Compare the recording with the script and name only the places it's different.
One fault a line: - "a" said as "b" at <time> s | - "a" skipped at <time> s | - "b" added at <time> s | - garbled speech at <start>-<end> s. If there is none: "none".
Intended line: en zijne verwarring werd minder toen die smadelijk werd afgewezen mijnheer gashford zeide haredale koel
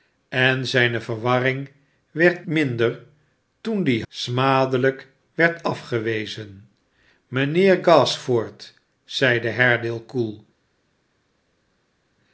none